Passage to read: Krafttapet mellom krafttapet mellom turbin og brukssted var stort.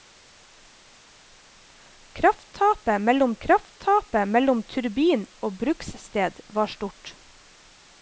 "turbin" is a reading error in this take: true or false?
false